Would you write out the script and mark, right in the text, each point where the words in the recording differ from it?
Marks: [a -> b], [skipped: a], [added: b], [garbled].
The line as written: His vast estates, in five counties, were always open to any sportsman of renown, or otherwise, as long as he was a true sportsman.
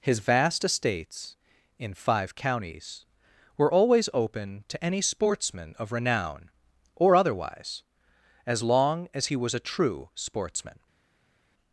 His vast estates, in five counties, were always open to any sportsman of renown, or otherwise, as long as he was a true sportsman.